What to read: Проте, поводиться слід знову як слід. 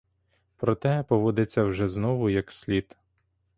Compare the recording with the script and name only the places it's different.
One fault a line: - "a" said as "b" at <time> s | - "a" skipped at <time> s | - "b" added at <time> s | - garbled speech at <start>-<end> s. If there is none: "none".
- "слід" said as "вже" at 1.6 s